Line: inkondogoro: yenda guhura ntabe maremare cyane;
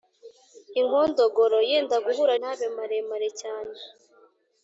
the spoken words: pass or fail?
pass